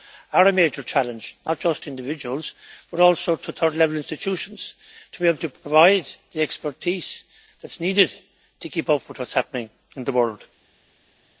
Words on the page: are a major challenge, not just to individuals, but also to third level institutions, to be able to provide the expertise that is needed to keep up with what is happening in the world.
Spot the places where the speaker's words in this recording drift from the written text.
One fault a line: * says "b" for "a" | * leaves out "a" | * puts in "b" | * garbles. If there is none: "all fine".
all fine